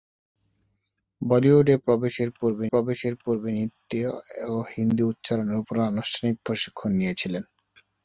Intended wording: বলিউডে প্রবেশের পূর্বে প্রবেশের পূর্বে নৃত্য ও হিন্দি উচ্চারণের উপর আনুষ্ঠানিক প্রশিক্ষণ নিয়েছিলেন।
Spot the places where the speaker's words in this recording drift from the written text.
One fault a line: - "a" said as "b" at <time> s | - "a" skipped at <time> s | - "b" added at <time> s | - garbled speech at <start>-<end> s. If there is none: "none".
none